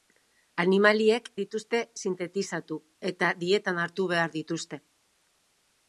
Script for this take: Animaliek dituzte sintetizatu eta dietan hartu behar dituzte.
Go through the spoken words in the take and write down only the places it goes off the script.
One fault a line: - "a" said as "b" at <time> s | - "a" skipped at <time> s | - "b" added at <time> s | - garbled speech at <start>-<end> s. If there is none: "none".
none